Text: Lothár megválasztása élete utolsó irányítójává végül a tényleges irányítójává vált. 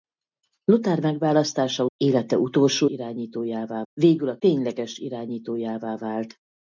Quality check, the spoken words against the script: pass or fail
pass